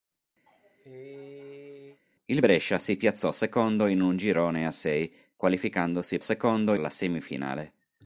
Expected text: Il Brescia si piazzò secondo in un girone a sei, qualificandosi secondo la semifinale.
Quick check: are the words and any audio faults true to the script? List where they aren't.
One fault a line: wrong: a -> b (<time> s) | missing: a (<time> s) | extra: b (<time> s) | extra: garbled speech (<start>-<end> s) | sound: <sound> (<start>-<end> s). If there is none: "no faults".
sound: cough (0.5-2.0 s)